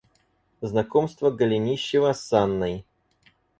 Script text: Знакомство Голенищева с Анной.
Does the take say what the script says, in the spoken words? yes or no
yes